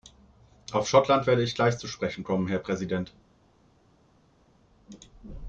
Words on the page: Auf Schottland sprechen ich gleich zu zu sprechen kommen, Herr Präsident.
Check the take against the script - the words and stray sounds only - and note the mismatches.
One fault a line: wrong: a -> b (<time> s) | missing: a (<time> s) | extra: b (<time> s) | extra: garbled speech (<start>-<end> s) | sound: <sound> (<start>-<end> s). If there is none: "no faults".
wrong: sprechen -> werde (1.3 s)
missing: zu (1.9 s)